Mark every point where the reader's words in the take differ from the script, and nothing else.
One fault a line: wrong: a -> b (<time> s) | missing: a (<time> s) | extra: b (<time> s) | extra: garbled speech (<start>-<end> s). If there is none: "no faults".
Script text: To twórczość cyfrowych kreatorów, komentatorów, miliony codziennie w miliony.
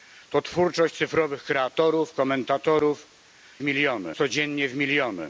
no faults